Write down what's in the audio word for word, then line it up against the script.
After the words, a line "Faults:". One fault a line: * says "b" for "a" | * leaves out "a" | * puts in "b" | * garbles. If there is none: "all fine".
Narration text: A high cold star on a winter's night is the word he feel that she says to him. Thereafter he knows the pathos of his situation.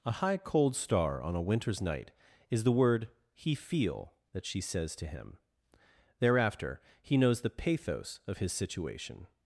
A high cold star on a winter's night is the word he feel that she says to him. Thereafter he knows the pathos of his situation.
Faults:
all fine